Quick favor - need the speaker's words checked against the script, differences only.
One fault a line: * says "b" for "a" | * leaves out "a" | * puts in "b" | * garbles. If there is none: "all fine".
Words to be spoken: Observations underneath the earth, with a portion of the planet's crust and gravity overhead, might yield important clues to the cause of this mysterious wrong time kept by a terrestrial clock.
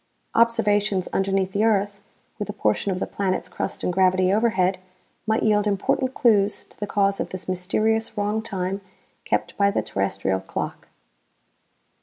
* says "the" for "a"